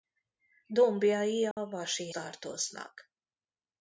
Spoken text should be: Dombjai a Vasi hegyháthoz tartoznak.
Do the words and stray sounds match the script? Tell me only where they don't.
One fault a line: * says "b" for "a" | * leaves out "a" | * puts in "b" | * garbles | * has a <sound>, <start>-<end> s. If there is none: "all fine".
* has a dropout, 1.5-1.6 s
* leaves out "hegyháthoz"